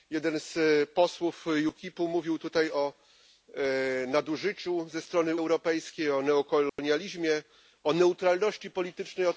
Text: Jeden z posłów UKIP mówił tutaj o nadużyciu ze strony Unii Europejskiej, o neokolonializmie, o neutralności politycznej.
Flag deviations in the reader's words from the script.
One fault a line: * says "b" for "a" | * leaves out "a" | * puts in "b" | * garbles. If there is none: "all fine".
* leaves out "Unii"